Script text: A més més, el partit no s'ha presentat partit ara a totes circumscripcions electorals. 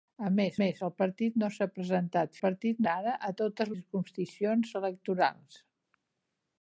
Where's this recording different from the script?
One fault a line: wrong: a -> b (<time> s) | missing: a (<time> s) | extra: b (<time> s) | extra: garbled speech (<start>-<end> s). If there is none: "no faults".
no faults